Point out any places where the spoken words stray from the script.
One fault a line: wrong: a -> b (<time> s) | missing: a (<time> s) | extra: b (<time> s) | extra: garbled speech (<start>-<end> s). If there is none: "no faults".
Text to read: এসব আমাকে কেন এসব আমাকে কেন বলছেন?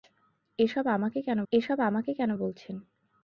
no faults